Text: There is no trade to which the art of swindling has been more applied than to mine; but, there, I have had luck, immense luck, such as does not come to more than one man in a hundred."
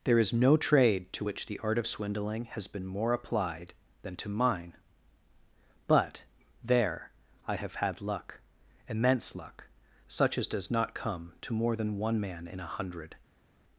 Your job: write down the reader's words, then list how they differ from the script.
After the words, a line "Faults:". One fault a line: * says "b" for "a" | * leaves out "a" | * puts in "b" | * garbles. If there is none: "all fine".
There is no trade to which the art of swindling has been more applied than to mine; but, there, I have had luck, immense luck, such as does not come to more than one man in a hundred."
Faults:
all fine